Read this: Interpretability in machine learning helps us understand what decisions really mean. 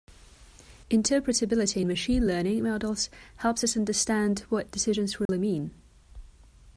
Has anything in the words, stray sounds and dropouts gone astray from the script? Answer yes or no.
yes